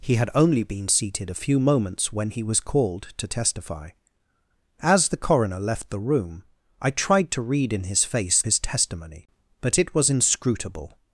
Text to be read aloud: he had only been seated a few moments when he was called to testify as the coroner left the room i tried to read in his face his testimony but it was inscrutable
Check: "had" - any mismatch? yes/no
no